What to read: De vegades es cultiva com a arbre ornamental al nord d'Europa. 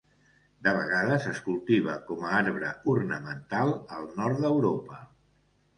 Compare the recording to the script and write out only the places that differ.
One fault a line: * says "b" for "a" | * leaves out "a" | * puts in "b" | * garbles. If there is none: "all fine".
all fine